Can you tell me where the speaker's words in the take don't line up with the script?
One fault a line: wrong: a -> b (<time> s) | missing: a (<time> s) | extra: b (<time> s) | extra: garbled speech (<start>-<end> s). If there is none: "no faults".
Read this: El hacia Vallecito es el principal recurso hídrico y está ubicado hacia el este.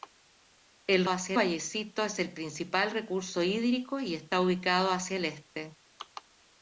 no faults